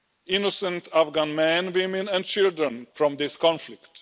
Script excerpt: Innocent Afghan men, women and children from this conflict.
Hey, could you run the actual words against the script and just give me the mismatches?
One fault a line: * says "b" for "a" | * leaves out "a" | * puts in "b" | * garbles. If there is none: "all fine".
all fine